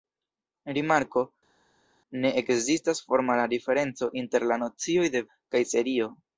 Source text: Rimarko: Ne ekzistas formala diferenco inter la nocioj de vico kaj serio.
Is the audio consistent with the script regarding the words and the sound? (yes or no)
no